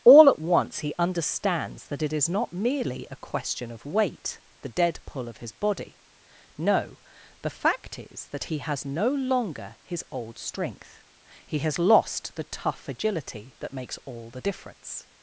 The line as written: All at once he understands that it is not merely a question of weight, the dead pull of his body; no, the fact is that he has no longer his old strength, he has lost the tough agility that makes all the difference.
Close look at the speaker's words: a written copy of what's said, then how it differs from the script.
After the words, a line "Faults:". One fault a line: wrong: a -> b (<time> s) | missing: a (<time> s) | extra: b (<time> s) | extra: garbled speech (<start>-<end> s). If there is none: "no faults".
All at once he understands that it is not merely a question of weight, the dead pull of his body; no, the fact is that he has no longer his old strength, he has lost the tough agility that makes all the difference.
Faults:
no faults